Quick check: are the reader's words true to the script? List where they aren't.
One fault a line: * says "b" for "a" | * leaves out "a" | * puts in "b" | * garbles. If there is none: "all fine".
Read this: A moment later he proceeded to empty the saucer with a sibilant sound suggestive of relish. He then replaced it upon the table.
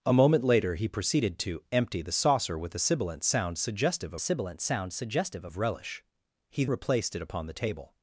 * puts in "sibilant sound suggestive"
* leaves out "then"